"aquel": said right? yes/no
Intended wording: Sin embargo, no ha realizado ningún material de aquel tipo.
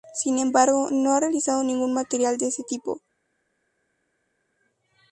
no